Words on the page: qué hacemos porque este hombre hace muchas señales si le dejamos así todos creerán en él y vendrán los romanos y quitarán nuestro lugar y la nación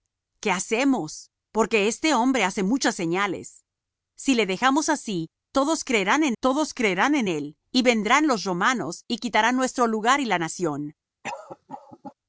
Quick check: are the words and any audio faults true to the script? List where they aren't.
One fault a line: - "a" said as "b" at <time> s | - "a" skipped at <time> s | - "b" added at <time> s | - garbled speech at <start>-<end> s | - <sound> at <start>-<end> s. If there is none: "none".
- "todos creerán en" added at 6.4 s
- cough at 11.2-12.2 s